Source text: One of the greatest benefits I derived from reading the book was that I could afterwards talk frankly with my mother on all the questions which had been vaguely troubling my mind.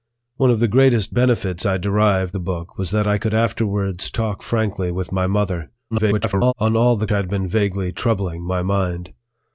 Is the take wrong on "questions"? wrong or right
wrong